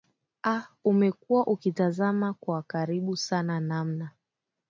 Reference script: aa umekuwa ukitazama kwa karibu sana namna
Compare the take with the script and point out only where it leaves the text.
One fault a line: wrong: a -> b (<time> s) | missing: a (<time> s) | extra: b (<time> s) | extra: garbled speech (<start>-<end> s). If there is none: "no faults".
no faults